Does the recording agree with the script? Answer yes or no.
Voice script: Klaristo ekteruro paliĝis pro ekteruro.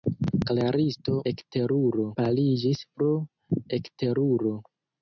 yes